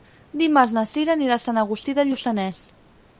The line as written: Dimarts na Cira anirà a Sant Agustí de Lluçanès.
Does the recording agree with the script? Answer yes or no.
yes